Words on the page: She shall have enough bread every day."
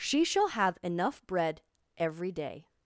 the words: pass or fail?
pass